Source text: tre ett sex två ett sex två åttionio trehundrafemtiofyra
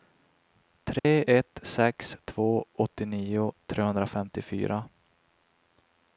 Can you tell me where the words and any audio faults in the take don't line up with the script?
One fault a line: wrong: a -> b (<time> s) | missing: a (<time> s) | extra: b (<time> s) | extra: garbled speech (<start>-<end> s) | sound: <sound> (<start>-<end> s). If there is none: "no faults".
sound: dropout (1.0-1.0 s)
missing: ett sex två (2.6 s)